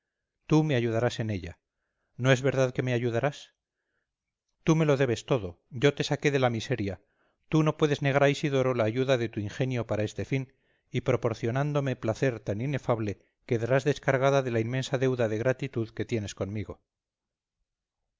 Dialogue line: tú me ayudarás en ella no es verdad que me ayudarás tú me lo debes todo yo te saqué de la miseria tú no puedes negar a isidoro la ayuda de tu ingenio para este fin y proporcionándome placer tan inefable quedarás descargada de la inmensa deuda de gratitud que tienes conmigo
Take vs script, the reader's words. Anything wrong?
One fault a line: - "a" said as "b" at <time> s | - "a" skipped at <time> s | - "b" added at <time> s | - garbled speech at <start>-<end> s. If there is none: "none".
none